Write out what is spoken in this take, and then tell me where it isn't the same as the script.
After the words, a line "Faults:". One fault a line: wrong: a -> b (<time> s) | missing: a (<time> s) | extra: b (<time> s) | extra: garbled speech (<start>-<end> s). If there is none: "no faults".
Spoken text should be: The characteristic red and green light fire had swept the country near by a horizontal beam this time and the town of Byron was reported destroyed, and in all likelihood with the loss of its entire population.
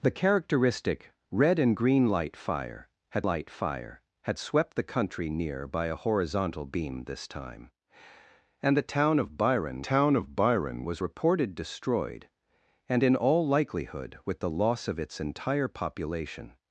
The characteristic red and green light fire had light fire had swept the country near by a horizontal beam this time and the town of Byron town of Byron was reported destroyed, and in all likelihood with the loss of its entire population.
Faults:
extra: light fire had (3.2 s)
extra: town of Byron (9.8 s)